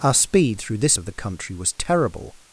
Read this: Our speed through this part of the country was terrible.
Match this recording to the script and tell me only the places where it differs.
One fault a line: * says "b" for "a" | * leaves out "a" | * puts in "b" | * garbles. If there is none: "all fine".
* leaves out "part"